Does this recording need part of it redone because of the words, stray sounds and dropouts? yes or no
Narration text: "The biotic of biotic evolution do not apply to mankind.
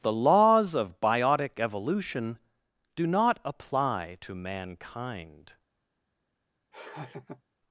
yes